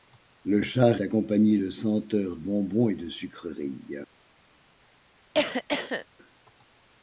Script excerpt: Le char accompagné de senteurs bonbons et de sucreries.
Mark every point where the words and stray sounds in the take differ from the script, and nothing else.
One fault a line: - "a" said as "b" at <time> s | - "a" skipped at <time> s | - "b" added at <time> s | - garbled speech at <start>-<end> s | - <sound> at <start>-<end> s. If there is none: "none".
- cough at 5.3-6.1 s